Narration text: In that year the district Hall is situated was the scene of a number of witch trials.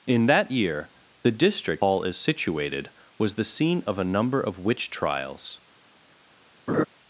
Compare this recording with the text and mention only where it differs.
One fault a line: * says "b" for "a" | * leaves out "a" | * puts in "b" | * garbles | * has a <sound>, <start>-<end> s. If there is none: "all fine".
* has a laugh, 6.7-6.8 s